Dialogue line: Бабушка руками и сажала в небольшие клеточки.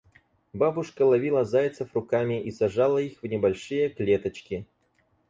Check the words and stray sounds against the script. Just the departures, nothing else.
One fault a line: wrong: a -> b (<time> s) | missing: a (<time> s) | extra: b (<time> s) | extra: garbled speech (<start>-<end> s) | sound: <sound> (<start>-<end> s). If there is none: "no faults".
extra: ловила зайцев (1.0 s)
extra: их (3.0 s)